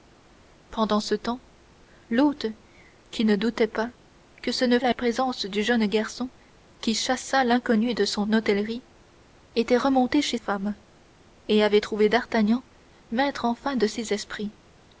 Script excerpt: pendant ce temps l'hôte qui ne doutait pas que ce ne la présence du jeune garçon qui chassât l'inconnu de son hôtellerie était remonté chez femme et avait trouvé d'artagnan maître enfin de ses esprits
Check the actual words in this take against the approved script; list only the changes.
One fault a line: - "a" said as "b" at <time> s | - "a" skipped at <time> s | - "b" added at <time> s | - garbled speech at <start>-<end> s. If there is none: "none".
none